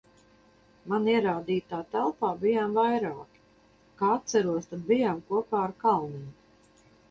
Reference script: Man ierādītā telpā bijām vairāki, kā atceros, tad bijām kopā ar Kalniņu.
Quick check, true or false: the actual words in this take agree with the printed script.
true